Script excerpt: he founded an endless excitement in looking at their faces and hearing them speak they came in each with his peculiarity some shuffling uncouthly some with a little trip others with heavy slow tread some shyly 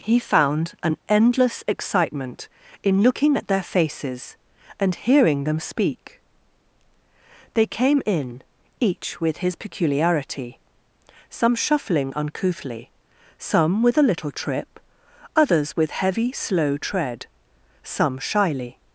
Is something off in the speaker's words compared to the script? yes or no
yes